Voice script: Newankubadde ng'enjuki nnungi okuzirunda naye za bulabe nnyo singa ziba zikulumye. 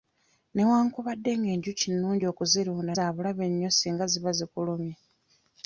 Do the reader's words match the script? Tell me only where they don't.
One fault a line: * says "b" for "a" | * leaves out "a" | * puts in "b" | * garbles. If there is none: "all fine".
* leaves out "naye"